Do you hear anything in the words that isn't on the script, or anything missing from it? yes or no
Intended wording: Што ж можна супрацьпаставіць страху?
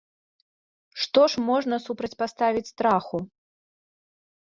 no